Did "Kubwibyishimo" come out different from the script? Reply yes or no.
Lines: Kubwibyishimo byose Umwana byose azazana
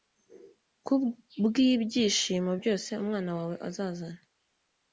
no